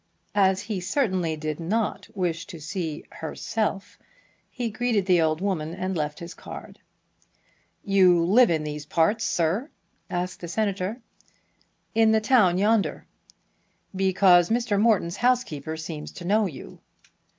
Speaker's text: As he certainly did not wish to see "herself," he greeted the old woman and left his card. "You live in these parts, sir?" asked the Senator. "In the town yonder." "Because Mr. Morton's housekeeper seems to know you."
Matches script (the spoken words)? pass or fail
pass